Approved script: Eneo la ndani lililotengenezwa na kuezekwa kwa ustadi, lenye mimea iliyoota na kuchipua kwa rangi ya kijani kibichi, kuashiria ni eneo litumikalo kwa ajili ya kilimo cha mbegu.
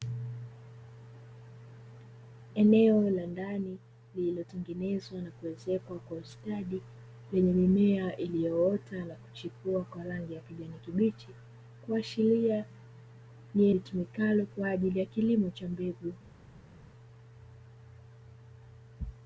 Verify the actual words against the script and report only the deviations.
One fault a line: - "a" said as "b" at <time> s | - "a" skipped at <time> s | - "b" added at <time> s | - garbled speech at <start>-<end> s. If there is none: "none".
- "eneo" skipped at 13.7 s